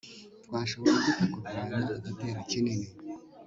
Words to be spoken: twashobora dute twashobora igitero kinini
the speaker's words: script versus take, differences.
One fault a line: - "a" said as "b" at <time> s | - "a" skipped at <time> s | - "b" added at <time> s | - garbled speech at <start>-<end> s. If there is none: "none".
- "twashobora" said as "kurwanya" at 1.3 s